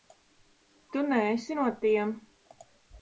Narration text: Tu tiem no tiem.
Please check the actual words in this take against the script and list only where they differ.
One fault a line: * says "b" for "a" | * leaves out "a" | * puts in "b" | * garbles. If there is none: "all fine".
* says "neesi" for "tiem"